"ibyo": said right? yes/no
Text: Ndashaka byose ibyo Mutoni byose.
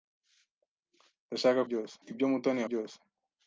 yes